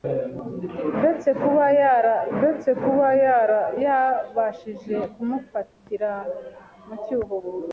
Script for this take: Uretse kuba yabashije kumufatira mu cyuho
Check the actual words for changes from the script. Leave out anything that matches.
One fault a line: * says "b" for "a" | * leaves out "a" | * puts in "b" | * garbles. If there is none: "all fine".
* puts in "uretse kuba"